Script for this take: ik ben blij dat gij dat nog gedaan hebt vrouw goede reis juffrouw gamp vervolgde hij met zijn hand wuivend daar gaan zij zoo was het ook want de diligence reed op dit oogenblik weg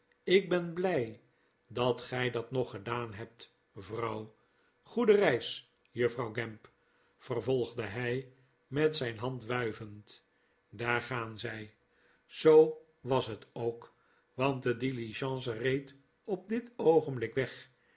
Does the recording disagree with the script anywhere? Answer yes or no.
no